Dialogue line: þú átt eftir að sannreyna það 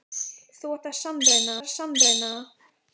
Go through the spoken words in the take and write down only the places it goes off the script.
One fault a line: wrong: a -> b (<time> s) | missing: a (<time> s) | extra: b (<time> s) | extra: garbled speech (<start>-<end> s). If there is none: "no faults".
wrong: eftir -> sannreyna (1.0 s)